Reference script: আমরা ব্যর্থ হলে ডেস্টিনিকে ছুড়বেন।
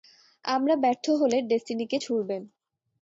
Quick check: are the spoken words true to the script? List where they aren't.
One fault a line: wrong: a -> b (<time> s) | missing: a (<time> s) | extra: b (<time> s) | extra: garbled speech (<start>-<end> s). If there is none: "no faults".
no faults